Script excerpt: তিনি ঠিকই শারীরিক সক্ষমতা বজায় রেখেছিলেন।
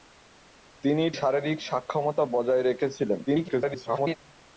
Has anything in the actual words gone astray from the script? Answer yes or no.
yes